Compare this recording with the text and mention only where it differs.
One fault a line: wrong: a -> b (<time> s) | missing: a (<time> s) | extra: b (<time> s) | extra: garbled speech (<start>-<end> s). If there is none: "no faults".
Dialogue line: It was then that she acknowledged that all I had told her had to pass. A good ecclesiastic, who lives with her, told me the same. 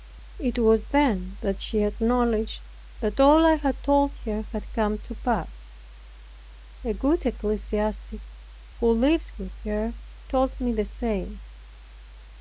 extra: come (4.7 s)